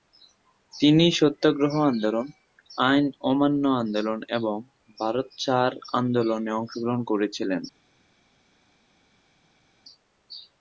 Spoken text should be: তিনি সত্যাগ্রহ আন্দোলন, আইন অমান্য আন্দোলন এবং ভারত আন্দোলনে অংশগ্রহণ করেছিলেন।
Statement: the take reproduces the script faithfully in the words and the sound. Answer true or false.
false